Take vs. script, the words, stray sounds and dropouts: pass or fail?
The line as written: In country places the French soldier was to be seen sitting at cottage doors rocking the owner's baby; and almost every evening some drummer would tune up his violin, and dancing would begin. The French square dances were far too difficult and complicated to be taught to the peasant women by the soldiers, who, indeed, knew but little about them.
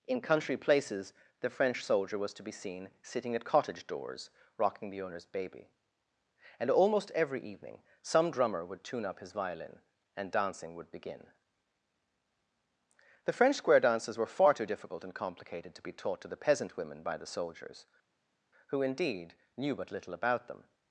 pass